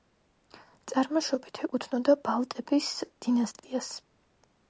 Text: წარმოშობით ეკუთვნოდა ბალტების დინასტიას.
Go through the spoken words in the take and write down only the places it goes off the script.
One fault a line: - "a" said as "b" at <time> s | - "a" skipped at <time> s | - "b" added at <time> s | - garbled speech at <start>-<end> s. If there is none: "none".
none